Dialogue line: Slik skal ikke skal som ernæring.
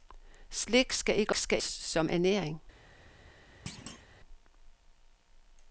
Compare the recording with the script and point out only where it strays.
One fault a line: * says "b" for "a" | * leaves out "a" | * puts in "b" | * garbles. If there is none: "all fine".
all fine